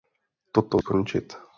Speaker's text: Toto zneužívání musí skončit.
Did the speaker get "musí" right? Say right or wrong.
wrong